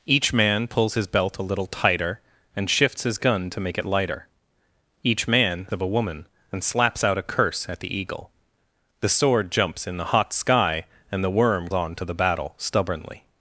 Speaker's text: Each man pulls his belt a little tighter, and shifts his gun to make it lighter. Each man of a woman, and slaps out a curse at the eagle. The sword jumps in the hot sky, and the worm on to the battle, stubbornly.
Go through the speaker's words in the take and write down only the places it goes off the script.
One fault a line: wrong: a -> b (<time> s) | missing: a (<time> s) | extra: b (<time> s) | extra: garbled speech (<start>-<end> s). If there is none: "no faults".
no faults